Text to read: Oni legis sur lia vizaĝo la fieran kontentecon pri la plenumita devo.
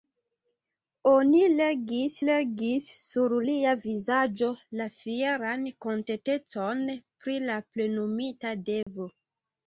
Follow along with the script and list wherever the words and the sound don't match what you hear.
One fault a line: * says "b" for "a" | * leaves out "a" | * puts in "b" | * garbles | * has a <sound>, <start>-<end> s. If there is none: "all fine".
* puts in "legis"
* has a dropout, 8.8-8.9 s